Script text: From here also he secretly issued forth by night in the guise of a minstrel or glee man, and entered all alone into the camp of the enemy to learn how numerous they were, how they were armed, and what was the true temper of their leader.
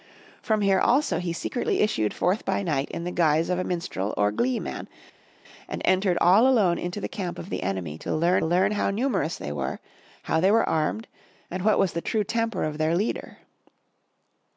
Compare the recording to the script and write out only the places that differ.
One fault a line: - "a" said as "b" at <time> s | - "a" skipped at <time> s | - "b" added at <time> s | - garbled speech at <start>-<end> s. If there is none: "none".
- "learn" added at 8.4 s